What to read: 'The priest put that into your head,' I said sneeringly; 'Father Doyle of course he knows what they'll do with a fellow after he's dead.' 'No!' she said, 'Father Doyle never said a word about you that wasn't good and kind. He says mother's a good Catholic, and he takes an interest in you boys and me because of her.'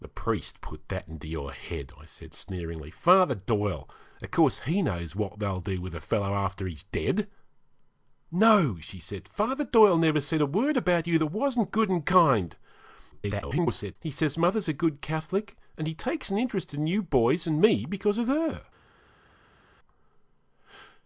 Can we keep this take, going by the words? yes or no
no